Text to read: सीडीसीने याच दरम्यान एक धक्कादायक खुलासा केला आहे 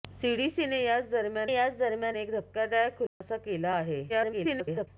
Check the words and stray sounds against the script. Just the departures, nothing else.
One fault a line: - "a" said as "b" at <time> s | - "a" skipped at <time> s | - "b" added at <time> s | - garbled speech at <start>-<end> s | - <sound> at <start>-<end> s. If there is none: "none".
- "याच दरम्यान" added at 1.5 s
- dropout at 3.1-3.2 s
- garbled speech at 4.1-4.9 s